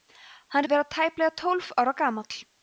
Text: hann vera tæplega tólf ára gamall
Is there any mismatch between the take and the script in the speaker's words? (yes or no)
no